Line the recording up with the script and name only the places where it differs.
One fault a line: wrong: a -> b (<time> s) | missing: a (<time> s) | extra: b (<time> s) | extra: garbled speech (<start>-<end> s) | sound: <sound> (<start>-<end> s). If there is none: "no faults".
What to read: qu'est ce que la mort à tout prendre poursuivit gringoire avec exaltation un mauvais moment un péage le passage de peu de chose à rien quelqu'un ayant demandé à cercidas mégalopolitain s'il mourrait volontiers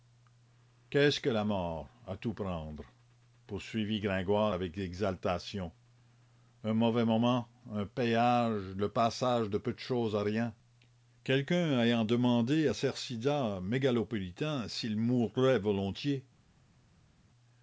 no faults